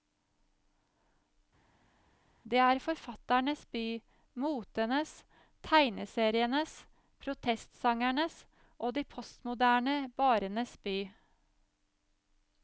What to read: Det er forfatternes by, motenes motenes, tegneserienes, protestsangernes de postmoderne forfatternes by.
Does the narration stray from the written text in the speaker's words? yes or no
yes